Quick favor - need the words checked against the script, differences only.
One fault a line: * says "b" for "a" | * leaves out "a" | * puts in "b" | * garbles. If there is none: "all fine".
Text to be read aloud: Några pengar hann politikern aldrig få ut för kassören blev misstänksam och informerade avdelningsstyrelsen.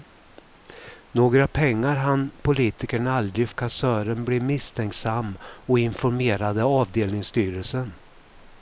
* leaves out "få ut för"